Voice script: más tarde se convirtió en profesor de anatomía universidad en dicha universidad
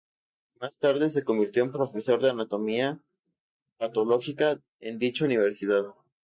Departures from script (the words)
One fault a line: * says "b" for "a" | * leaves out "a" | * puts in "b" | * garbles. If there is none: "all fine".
* says "patológica" for "universidad"